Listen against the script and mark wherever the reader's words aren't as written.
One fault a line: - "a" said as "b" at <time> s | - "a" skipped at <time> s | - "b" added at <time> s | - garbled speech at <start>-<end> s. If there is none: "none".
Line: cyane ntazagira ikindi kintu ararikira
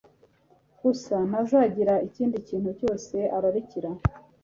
- "cyane" said as "gusa" at 0.8 s
- "cyose" added at 2.8 s